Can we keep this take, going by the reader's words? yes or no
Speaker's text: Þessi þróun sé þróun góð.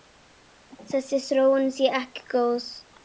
no